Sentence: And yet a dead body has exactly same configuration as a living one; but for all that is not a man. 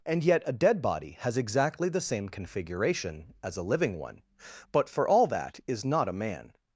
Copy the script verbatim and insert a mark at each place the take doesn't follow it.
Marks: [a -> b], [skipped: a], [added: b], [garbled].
And yet a dead body has exactly [added: the] same configuration as a living one; but for all that is not a man.